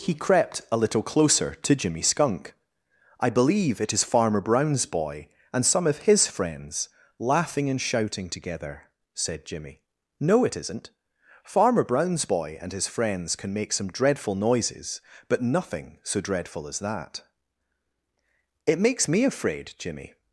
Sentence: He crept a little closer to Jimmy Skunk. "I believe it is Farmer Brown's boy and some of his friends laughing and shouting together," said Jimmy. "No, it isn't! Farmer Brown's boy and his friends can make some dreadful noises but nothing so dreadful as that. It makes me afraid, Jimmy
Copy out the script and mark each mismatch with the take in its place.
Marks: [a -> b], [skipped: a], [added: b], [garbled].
He crept a little closer to Jimmy Skunk. "I believe it is Farmer Brown's boy and some of his friends laughing and shouting together," said Jimmy. "No, it isn't! Farmer Brown's boy and his friends can make some dreadful noises but nothing so dreadful as that. It makes me afraid, Jimmy